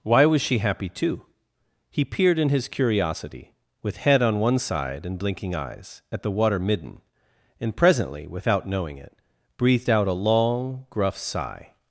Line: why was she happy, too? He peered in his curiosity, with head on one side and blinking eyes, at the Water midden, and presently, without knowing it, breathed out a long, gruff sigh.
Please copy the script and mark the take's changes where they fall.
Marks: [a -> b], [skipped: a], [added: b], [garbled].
why was she happy, too? He peered in his curiosity, with head on one side and blinking eyes, at the Water midden, and presently, without knowing it, breathed out a long, gruff sigh.